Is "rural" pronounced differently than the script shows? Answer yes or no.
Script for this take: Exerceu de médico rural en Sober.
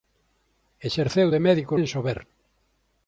yes